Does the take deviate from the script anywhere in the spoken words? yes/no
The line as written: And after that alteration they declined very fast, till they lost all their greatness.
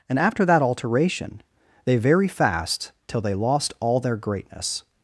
yes